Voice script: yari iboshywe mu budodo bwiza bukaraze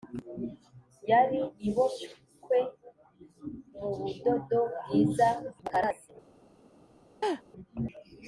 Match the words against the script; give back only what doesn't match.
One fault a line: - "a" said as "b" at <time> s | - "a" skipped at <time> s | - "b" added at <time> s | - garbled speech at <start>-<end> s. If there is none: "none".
none